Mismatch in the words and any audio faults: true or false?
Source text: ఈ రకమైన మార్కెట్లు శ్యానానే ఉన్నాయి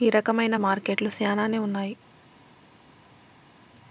false